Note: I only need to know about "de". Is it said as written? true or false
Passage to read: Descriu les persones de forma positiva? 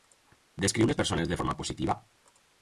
true